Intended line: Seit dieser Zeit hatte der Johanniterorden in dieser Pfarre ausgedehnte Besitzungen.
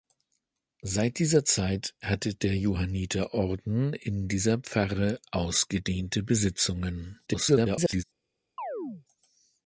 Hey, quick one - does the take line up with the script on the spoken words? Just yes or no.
no